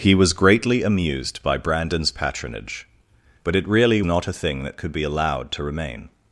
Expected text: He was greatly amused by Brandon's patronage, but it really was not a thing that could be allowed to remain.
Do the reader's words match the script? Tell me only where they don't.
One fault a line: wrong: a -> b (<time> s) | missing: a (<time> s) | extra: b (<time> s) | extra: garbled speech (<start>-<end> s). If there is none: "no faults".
missing: was (4.0 s)